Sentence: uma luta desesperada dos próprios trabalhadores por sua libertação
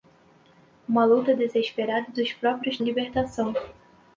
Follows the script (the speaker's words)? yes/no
no